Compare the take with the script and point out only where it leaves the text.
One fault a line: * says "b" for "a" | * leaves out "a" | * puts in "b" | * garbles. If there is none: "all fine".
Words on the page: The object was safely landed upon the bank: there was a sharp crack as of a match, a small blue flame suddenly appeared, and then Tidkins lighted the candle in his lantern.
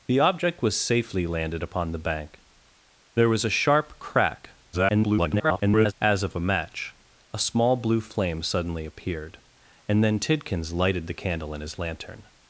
* garbles